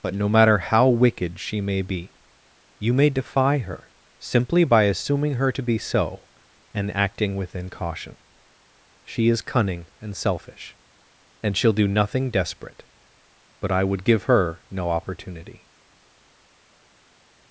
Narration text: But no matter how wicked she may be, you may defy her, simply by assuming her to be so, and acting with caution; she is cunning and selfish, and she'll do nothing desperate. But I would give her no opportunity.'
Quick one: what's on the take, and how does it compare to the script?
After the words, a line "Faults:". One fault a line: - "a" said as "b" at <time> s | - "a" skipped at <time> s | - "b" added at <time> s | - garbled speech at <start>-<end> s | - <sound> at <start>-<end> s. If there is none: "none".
But no matter how wicked she may be, you may defy her, simply by assuming her to be so, and acting within caution; she is cunning and selfish, and she'll do nothing desperate. But I would give her no opportunity.'
Faults:
- "with" said as "within" at 7.3 s